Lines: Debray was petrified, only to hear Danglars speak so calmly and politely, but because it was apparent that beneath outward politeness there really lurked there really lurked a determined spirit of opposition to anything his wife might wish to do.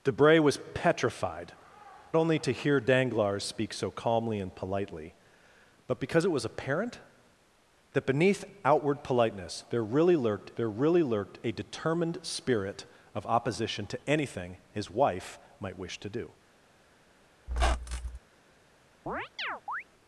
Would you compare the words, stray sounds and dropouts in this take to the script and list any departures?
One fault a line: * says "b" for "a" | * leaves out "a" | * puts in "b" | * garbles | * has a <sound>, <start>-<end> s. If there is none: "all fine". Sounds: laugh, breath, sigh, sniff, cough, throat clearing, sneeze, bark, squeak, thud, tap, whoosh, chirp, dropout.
* has a squeak, 17.5-18.2 s
* has a chirp, 19.1-19.8 s